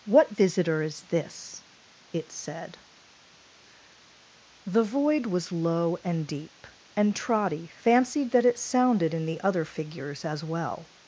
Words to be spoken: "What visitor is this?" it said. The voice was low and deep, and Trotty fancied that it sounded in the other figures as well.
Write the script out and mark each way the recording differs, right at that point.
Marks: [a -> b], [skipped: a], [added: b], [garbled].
"What visitor is this?" it said. The [voice -> void] was low and deep, and Trotty fancied that it sounded in the other figures as well.